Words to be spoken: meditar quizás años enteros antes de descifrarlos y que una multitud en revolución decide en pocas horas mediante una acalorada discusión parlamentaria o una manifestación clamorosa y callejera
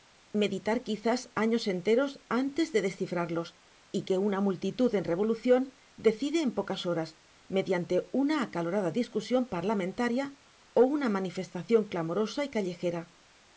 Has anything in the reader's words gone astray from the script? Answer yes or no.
no